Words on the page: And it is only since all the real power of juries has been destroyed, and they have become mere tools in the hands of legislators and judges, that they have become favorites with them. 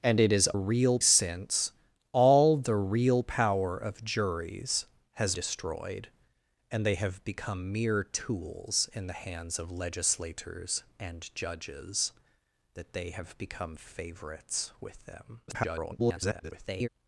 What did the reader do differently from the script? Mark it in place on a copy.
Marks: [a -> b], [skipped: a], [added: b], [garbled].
And it is [only -> real] since all the real power of juries has [skipped: been] destroyed, and they have become mere tools in the hands of legislators and judges, that they have become favorites with them. [garbled]